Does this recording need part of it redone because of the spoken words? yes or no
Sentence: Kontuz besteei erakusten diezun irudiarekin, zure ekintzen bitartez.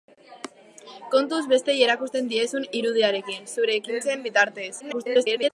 yes